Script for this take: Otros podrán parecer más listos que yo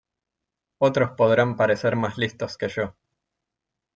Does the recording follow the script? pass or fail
pass